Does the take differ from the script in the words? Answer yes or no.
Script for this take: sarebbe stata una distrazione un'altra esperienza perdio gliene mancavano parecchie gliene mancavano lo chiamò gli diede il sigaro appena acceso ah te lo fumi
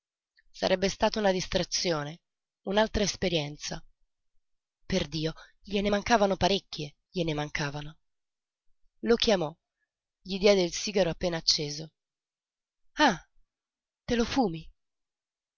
no